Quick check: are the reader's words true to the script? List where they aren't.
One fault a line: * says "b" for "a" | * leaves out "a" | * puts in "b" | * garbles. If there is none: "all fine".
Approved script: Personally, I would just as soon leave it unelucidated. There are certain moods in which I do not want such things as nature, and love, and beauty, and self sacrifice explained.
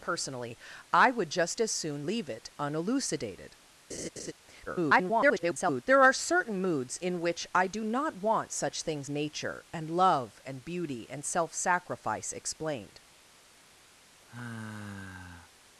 * garbles
* leaves out "as"